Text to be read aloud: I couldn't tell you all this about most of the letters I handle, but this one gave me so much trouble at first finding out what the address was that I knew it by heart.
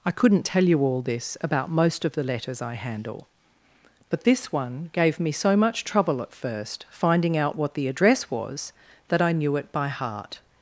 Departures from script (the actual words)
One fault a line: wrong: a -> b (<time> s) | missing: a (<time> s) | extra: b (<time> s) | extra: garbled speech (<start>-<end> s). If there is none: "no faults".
no faults